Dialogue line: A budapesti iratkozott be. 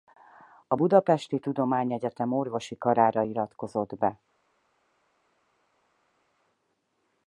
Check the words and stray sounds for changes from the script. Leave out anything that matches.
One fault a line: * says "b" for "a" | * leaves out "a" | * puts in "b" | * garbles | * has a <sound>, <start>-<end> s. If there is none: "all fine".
* puts in "tudományegyetem orvosi karára"